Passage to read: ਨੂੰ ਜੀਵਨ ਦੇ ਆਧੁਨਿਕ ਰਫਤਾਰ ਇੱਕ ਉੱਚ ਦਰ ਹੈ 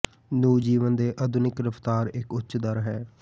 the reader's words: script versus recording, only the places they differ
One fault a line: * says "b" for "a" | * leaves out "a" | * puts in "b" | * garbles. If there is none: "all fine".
all fine